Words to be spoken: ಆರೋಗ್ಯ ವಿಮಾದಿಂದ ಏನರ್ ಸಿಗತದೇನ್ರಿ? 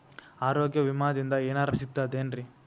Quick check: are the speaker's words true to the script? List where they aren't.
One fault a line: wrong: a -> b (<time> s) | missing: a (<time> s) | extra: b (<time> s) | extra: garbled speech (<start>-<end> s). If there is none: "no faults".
no faults